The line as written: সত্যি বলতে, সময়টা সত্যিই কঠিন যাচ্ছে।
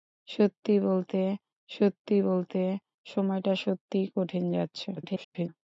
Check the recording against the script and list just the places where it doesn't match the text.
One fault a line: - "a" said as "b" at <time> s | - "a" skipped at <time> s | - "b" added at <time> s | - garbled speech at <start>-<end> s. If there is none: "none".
- "সত্যি বলতে" added at 1.7 s
- garbled speech at 5.0-5.5 s